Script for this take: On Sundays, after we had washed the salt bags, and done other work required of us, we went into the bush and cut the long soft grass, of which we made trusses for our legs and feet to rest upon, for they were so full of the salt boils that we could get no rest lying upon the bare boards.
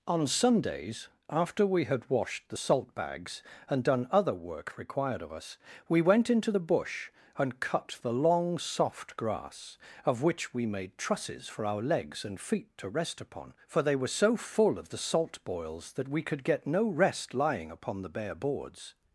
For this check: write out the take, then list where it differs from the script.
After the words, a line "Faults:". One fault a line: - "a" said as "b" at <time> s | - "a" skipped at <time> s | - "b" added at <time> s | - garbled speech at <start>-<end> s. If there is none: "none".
On Sundays, after we had washed the salt bags, and done other work required of us, we went into the bush and cut the long soft grass, of which we made trusses for our legs and feet to rest upon, for they were so full of the salt boils that we could get no rest lying upon the bare boards.
Faults:
none